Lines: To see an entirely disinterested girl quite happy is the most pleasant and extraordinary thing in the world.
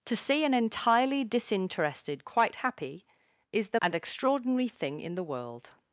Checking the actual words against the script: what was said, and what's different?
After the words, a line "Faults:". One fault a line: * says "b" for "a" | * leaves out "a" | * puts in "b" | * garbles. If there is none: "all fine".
To see an entirely disinterested quite happy is the and extraordinary thing in the world.
Faults:
* leaves out "girl"
* leaves out "most pleasant"